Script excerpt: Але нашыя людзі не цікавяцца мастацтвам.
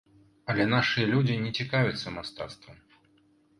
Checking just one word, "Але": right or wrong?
right